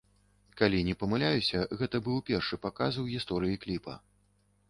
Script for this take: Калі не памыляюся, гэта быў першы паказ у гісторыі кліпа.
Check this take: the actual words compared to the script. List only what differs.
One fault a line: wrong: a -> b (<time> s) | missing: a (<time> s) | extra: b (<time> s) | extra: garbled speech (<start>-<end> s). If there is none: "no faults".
no faults